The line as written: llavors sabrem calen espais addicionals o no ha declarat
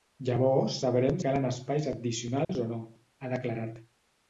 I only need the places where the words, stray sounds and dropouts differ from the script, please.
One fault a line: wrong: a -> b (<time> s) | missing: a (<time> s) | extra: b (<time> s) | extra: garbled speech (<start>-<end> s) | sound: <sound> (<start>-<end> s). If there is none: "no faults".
sound: dropout (2.4-2.5 s)